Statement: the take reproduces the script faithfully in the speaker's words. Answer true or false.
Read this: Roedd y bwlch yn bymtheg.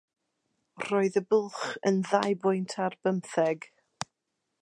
false